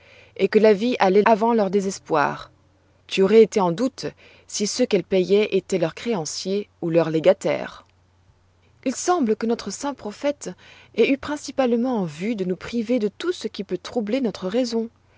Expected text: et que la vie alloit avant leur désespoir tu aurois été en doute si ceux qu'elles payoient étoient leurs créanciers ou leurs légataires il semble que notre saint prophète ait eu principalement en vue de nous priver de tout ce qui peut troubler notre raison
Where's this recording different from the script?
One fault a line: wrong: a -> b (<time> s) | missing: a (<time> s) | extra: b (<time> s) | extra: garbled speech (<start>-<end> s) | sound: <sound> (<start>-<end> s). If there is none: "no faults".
no faults